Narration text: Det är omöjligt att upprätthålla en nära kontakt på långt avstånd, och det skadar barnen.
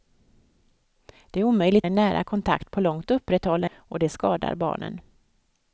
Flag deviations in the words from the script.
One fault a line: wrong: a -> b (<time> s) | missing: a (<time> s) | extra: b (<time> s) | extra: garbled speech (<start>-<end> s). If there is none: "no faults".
missing: att upprätthålla (1.9 s)
wrong: avstånd -> upprätthålla (3.1 s)